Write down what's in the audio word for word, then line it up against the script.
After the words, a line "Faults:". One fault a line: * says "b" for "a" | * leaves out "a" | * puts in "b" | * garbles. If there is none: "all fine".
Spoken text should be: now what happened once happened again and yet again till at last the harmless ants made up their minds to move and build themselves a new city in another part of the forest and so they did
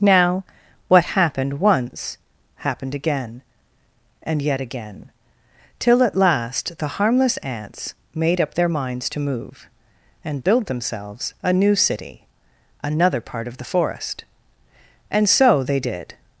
now what happened once happened again and yet again till at last the harmless ants made up their minds to move and build themselves a new city another part of the forest and so they did
Faults:
* leaves out "in"